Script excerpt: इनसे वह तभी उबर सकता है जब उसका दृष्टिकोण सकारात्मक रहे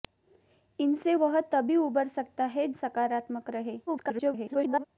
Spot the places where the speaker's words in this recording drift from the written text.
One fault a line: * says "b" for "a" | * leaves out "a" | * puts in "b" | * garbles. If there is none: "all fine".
* leaves out "जब उसका दृष्टिकोण"
* garbles